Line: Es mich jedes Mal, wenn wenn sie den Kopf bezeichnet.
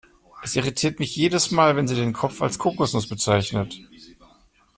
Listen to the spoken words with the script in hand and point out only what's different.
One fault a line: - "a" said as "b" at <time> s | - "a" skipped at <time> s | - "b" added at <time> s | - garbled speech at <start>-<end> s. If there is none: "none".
- "irritiert" added at 0.6 s
- "wenn" skipped at 1.9 s
- "als Kokosnuss" added at 2.4 s